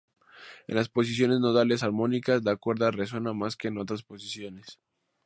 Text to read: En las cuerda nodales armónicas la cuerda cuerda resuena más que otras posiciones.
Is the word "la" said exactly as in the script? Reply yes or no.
yes